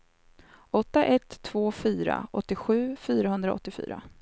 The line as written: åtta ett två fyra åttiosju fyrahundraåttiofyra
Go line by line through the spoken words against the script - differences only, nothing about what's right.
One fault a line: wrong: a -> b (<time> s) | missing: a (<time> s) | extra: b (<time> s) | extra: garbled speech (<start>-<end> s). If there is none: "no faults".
no faults